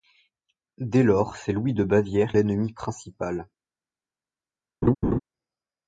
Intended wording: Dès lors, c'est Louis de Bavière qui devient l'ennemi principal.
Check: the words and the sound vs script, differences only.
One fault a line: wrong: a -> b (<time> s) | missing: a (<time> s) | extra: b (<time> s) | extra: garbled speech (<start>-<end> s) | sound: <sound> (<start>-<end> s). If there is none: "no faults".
missing: qui devient (2.3 s)
sound: laugh (4.8-5.2 s)